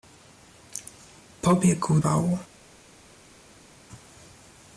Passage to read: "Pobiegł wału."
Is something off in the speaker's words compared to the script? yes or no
no